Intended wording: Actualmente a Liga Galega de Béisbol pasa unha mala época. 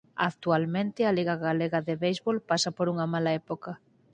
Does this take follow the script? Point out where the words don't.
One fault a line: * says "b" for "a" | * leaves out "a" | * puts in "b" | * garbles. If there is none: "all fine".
* puts in "por"